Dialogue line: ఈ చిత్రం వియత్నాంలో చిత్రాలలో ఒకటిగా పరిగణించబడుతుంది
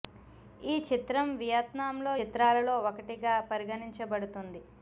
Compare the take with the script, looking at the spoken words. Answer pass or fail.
pass